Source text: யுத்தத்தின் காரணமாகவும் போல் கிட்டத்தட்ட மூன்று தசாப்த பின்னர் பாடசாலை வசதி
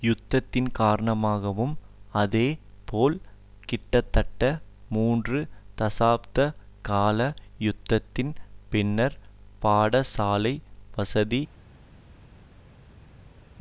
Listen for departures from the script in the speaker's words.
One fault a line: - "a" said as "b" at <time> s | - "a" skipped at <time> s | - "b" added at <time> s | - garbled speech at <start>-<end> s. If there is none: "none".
- "அதே" added at 2.1 s
- "கால யுத்தத்தின்" added at 6.8 s